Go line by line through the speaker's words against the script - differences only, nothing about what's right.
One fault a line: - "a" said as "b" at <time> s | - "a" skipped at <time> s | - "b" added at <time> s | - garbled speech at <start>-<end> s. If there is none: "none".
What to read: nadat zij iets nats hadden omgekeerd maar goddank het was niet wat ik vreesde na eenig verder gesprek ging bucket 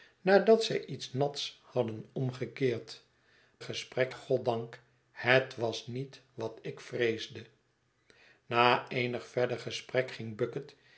- "maar" said as "gesprek" at 3.6 s